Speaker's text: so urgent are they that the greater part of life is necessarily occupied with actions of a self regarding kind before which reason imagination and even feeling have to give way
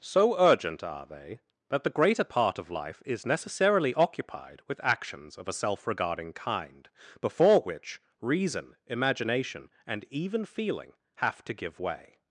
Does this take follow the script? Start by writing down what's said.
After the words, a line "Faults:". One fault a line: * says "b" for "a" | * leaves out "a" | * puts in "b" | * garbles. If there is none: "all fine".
so urgent are they that the greater part of life is necessarily occupied with actions of a self regarding kind before which reason imagination and even feeling have to give way
Faults:
all fine